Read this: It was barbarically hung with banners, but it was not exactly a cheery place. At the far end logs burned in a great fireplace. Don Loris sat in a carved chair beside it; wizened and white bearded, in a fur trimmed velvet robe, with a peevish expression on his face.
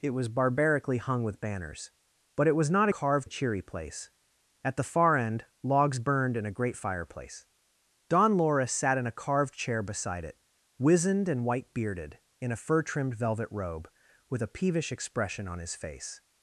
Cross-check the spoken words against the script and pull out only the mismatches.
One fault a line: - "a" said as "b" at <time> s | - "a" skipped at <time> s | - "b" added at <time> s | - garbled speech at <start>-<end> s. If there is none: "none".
- "exactly" said as "carved" at 2.9 s